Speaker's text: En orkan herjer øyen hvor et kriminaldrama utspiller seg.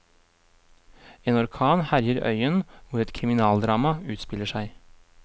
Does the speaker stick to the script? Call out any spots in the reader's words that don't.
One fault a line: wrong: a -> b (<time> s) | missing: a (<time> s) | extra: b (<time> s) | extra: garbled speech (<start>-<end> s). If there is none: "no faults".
no faults